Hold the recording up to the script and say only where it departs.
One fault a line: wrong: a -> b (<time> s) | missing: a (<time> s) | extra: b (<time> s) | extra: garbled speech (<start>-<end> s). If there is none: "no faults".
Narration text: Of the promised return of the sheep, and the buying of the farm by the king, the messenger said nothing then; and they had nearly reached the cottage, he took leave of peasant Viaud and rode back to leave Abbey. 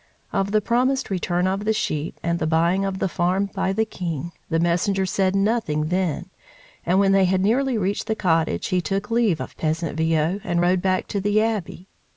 extra: when (7.0 s)
wrong: leave -> the (11.2 s)